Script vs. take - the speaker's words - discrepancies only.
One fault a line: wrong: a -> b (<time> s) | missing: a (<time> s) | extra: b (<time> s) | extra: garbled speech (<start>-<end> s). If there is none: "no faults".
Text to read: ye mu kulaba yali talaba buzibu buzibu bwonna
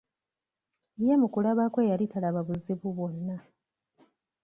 extra: kwe (1.7 s)
missing: buzibu (2.9 s)